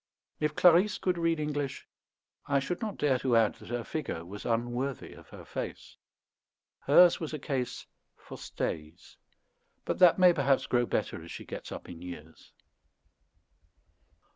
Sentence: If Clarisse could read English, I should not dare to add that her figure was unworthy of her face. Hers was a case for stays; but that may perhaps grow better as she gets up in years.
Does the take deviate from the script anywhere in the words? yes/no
no